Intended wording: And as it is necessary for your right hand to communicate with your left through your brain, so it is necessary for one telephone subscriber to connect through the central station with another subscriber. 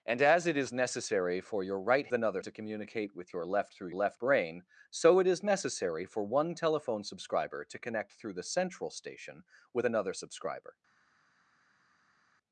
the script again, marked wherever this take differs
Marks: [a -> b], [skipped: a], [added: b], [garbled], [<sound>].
And as it is necessary for your right [hand -> another] to communicate with your left through [your -> left] brain, so it is necessary for one telephone subscriber to connect through the central station with another subscriber.